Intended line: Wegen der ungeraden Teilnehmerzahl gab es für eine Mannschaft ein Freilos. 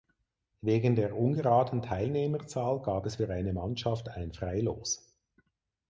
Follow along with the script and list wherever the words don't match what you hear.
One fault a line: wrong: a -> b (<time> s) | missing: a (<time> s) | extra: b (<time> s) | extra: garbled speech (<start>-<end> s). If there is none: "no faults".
no faults